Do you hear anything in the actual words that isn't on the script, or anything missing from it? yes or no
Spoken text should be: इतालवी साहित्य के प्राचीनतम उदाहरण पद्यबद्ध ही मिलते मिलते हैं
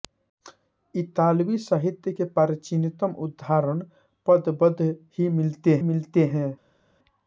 no